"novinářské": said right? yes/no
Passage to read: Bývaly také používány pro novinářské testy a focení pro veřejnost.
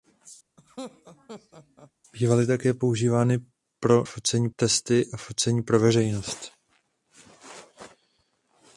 no